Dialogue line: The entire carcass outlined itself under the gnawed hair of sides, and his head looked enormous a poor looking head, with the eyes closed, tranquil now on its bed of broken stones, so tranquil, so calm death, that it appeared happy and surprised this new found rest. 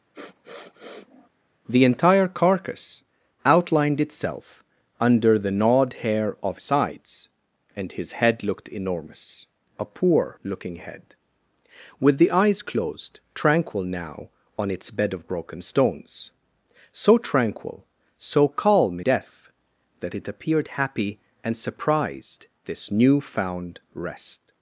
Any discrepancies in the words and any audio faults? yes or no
yes